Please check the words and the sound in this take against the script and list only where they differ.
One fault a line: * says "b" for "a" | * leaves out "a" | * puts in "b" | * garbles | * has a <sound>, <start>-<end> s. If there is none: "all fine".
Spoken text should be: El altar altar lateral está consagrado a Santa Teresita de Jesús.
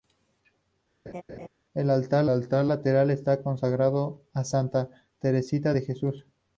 * has a laugh, 1.1-1.5 s